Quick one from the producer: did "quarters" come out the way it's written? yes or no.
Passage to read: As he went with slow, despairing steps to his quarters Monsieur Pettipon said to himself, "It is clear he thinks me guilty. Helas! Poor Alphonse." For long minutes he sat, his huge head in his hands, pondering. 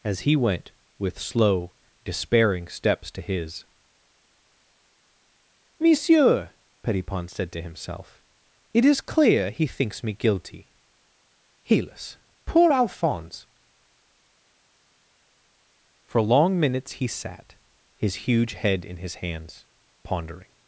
no